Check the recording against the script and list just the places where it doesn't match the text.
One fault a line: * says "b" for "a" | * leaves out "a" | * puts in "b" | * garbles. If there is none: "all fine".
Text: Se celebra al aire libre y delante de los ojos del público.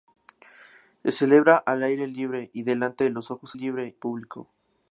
* says "libre" for "del"